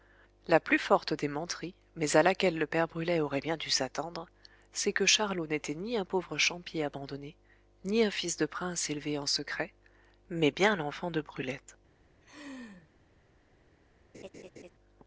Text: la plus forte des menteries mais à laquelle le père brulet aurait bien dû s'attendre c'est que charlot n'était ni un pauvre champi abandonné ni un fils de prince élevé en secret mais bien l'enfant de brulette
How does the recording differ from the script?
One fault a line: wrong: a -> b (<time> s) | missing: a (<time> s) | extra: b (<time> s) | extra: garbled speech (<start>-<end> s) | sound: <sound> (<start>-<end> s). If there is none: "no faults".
sound: laugh (12.2-12.9 s)
sound: laugh (14.1-14.7 s)